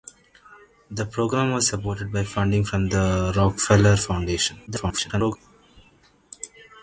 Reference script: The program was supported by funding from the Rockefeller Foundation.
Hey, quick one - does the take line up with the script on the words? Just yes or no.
no